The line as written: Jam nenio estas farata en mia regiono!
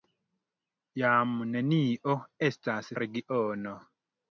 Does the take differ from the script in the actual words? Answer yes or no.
yes